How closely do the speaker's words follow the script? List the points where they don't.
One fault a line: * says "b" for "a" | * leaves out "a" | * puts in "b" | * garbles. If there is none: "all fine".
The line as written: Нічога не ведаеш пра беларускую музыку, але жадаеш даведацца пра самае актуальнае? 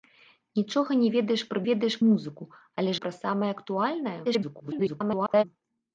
* says "ведаеш" for "беларускую"
* leaves out "жадаеш даведацца"
* garbles